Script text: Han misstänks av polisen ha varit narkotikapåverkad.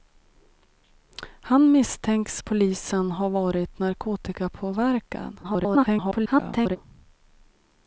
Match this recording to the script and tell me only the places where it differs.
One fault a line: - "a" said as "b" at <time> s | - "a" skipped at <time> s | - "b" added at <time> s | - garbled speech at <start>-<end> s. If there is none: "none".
- "av" skipped at 2.4 s
- garbled speech at 5.4-6.8 s